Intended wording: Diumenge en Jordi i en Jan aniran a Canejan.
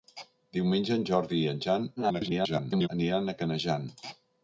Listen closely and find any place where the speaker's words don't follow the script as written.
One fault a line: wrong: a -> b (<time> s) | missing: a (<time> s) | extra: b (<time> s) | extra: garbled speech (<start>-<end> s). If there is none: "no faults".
extra: garbled speech (2.0-2.9 s)